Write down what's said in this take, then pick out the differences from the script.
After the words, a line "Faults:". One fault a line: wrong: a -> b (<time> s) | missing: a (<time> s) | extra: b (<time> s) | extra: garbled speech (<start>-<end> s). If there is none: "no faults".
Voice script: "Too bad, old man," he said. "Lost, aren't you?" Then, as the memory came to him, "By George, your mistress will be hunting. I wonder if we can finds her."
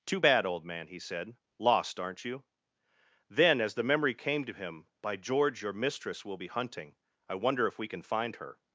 "Too bad, old man," he said. "Lost, aren't you?" Then, as the memory came to him, "By George, your mistress will be hunting. I wonder if we can find her."
Faults:
wrong: finds -> find (8.0 s)